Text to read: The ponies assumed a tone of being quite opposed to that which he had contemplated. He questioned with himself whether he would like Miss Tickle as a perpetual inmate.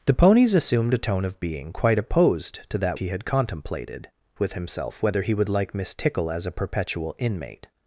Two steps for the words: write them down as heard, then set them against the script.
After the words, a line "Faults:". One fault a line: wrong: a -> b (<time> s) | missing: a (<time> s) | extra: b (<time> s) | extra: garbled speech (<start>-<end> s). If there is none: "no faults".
The ponies assumed a tone of being quite opposed to that he had contemplated. With himself whether he would like Miss Tickle as a perpetual inmate.
Faults:
missing: which (3.0 s)
missing: He questioned (4.1 s)